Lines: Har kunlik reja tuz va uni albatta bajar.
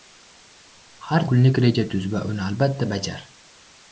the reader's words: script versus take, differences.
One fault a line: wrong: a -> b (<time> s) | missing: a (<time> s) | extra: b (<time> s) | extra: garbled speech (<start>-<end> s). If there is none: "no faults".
no faults